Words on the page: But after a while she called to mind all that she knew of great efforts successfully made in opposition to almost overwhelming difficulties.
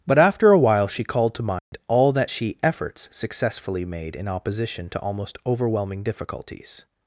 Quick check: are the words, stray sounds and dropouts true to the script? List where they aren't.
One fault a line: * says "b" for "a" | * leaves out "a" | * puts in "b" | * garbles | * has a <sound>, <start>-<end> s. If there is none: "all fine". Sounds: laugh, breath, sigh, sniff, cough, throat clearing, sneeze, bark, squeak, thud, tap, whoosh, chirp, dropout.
* has a dropout, 1.6-1.7 s
* leaves out "knew of great"